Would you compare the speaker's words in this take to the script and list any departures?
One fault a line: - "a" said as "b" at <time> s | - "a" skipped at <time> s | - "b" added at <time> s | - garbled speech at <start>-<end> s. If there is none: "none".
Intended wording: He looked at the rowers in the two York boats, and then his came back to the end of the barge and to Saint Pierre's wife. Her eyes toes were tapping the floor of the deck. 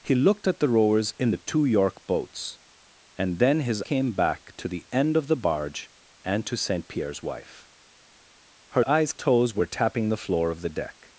none